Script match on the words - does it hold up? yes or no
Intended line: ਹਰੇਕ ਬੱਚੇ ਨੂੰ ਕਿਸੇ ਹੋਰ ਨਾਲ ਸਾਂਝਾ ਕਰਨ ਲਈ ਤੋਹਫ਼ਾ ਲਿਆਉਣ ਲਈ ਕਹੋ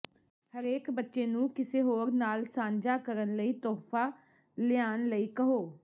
yes